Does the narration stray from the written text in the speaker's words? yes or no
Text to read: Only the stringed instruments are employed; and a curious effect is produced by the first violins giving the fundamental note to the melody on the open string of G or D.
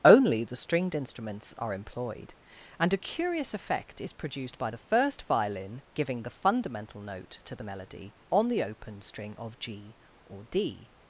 yes